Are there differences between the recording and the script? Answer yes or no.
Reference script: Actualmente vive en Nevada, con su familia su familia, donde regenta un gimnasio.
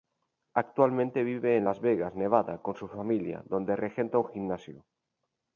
yes